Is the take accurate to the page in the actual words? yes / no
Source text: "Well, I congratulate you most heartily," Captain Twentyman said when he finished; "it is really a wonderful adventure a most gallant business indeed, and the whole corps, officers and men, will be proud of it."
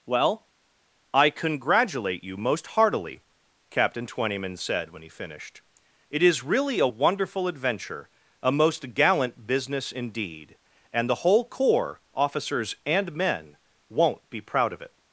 no